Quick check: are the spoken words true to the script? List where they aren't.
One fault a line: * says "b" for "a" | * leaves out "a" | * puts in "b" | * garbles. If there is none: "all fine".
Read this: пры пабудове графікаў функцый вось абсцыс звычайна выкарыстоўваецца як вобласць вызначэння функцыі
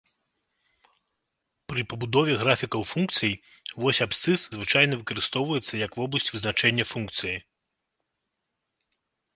all fine